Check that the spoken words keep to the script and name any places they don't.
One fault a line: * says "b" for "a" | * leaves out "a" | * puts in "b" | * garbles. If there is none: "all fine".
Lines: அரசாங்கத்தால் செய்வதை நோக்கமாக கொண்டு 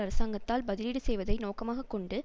* puts in "பதிலீடு"